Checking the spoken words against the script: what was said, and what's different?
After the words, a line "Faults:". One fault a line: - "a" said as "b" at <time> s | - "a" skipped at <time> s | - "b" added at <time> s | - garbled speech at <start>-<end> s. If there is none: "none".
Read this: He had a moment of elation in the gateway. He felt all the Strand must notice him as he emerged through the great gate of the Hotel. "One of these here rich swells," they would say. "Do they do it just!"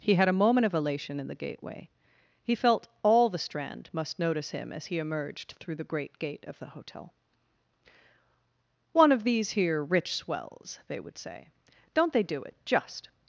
He had a moment of elation in the gateway. He felt all the Strand must notice him as he emerged through the great gate of the Hotel. "One of these here rich swells," they would say. "Don't they do it just!"
Faults:
- "Do" said as "Don't" at 11.9 s